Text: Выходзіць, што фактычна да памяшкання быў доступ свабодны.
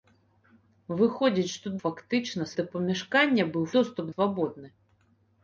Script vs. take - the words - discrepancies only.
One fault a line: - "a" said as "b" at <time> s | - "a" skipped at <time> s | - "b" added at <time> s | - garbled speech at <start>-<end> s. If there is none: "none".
none